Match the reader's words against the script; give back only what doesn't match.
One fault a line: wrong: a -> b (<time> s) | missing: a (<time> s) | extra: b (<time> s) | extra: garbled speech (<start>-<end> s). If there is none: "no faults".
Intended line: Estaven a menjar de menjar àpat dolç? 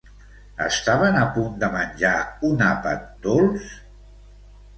wrong: menjar -> punt (1.4 s)
extra: un (2.5 s)